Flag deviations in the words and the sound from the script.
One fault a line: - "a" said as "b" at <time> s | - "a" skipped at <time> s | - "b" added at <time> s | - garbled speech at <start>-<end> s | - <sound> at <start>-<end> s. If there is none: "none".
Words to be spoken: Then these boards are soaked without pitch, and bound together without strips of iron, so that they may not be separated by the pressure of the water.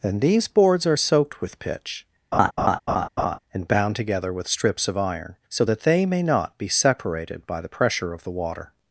- "without" said as "with" at 1.4 s
- laugh at 2.3-3.4 s
- "without" said as "with" at 4.3 s